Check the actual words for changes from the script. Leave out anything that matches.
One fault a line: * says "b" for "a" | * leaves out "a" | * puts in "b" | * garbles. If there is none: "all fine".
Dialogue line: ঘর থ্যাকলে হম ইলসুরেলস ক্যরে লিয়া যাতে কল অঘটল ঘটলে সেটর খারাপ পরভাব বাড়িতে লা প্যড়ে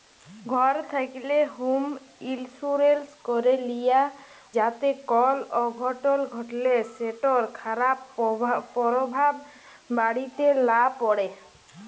all fine